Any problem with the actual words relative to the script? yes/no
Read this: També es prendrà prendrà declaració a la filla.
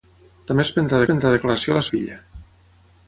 no